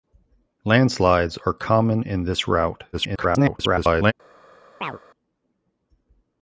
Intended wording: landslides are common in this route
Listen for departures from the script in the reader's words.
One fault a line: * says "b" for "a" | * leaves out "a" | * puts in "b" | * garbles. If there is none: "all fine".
* garbles